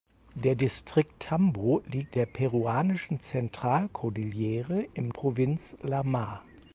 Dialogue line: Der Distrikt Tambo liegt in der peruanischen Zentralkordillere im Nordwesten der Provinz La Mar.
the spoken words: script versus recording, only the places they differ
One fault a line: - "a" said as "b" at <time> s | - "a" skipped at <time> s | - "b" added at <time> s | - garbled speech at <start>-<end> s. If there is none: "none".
- "in" skipped at 2.1 s
- "Nordwesten der" skipped at 5.1 s